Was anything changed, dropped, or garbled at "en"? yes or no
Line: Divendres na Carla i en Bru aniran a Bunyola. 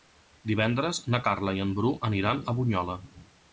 no